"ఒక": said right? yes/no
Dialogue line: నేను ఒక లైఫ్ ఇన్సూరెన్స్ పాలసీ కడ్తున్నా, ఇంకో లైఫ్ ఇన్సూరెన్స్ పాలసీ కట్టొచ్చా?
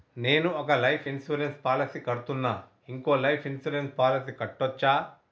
yes